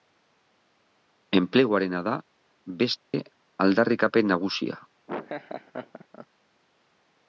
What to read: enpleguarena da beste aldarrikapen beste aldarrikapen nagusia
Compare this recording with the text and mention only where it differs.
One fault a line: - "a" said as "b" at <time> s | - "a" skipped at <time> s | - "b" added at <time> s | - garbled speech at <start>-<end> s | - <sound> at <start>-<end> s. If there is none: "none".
- dropout at 3.0-3.1 s
- "beste aldarrikapen" skipped at 4.3 s
- laugh at 5.1-6.3 s